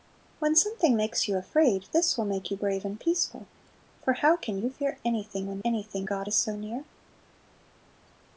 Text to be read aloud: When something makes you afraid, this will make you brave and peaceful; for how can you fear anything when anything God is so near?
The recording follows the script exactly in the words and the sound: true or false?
true